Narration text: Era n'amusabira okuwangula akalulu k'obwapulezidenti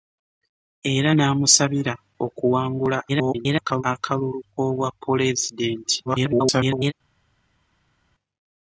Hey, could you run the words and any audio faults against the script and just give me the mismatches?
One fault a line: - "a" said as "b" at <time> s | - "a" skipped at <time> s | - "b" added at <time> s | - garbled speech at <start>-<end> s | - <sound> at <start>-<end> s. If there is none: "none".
- garbled speech at 3.1-3.8 s
- garbled speech at 6.1-6.9 s